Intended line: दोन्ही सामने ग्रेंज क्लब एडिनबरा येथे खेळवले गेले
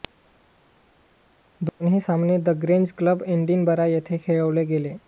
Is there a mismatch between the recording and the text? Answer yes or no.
yes